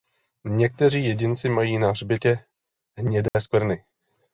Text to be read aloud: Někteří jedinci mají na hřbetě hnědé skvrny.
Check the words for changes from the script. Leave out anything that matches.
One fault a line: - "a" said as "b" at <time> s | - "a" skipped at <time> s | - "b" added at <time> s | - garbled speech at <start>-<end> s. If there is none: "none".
none